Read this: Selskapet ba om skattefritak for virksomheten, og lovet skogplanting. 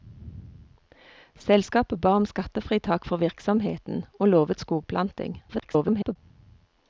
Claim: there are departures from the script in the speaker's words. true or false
true